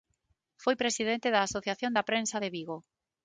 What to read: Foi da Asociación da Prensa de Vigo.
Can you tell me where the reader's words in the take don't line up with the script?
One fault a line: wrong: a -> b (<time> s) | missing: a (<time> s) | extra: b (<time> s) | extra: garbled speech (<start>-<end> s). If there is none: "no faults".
extra: presidente (0.8 s)